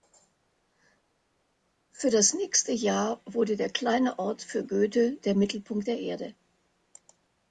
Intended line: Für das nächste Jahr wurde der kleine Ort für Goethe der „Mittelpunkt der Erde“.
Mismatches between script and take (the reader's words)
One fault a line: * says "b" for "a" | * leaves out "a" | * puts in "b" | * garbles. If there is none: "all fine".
all fine